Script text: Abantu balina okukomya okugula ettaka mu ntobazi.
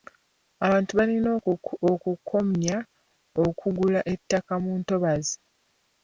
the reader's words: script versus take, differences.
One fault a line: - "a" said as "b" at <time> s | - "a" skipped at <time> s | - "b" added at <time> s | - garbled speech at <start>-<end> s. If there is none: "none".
none